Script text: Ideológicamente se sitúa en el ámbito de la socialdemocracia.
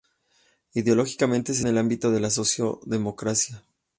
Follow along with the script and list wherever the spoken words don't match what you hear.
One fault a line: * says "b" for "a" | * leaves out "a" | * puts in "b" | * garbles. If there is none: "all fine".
* leaves out "sitúa"